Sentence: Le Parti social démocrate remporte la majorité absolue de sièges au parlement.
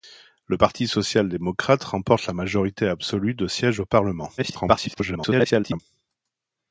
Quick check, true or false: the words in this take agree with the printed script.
false